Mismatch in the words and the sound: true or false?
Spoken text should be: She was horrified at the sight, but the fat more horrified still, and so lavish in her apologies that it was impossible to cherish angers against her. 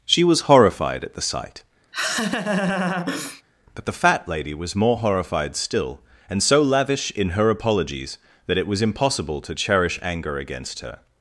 true